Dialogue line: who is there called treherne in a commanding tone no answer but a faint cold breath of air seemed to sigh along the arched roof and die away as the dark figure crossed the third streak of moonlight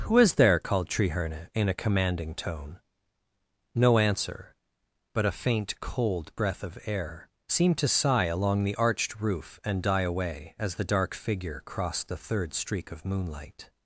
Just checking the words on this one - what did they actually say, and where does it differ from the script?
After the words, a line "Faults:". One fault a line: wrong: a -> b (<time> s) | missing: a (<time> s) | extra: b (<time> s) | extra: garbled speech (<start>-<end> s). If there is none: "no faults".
who is there called treherne in a commanding tone no answer but a faint cold breath of air seemed to sigh along the arched roof and die away as the dark figure crossed the third streak of moonlight
Faults:
no faults